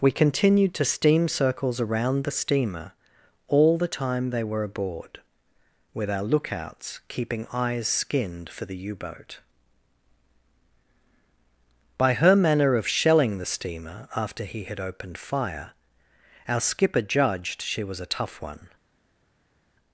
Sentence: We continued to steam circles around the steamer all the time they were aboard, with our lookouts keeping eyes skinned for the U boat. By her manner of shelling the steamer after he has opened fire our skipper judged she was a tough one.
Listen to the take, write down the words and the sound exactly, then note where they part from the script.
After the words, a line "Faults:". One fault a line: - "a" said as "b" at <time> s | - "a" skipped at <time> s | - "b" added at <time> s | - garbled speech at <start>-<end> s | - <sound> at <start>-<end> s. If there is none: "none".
We continued to steam circles around the steamer all the time they were aboard, with our lookouts keeping eyes skinned for the U boat. By her manner of shelling the steamer after he had opened fire our skipper judged she was a tough one.
Faults:
- "has" said as "had" at 14.6 s